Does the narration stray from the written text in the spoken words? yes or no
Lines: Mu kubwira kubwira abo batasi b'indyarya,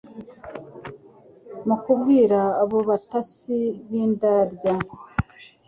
yes